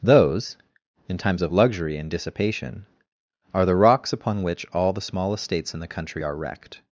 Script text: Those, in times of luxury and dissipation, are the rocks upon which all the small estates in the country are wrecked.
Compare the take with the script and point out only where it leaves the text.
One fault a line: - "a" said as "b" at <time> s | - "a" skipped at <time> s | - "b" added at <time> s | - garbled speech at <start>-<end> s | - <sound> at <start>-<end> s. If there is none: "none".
none